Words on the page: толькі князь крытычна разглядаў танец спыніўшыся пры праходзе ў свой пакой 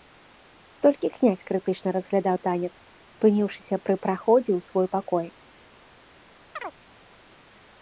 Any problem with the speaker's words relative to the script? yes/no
no